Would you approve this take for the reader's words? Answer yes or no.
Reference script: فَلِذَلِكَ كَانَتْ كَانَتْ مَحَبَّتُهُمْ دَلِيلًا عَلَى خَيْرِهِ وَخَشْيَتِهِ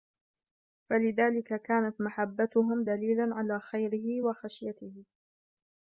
no